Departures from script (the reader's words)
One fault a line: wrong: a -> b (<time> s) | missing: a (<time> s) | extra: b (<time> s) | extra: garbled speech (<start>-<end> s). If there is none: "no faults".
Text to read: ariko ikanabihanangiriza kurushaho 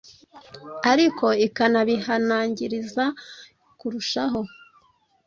no faults